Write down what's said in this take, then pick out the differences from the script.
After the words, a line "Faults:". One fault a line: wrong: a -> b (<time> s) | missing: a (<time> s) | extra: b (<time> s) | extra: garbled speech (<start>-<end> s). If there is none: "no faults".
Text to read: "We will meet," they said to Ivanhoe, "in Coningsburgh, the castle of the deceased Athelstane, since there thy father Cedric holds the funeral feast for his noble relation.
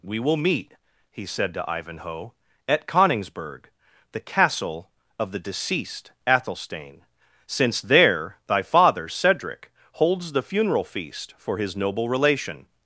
"We will meet," he said to Ivanhoe, "at Coningsburgh, the castle of the deceased Athelstane, since there thy father Cedric holds the funeral feast for his noble relation.
Faults:
wrong: they -> he (1.1 s)
wrong: in -> at (2.7 s)